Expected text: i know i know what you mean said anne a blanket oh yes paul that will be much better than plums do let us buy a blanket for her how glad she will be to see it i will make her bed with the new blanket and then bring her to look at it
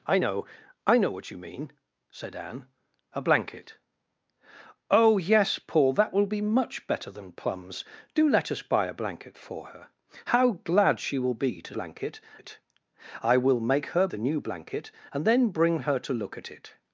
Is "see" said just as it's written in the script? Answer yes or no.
no